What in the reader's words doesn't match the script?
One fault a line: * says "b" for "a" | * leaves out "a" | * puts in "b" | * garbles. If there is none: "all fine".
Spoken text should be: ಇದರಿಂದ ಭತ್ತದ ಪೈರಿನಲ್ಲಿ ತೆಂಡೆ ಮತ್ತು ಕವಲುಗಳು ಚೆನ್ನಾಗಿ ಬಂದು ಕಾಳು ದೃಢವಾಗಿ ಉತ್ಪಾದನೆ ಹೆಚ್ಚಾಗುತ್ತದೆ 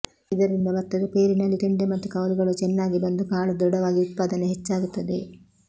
all fine